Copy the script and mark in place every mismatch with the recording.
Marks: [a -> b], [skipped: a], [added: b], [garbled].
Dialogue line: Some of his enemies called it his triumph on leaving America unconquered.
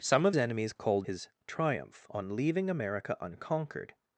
Some of [skipped: his] enemies called [skipped: it] his triumph on leaving America unconquered.